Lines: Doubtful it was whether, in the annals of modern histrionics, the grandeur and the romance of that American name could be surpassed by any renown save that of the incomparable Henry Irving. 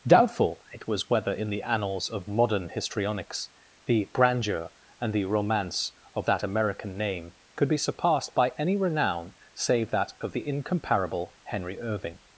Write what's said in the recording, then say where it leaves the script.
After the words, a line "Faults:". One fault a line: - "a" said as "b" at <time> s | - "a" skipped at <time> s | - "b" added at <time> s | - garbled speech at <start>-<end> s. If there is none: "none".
Doubtful it was whether, in the annals of modern histrionics, the grandeur and the romance of that American name could be surpassed by any renown save that of the incomparable Henry Irving.
Faults:
none